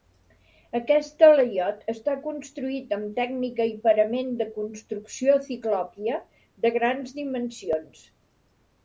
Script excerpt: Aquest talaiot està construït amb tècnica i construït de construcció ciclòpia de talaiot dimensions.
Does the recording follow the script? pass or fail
fail